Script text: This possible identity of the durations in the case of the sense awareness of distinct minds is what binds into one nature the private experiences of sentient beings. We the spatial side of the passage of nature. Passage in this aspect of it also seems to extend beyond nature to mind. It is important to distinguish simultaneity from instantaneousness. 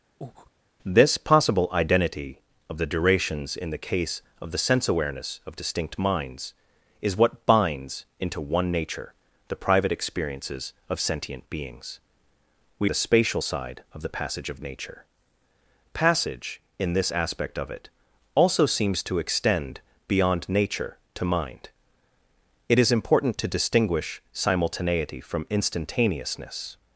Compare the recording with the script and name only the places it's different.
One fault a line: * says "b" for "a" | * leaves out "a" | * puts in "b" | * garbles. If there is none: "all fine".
all fine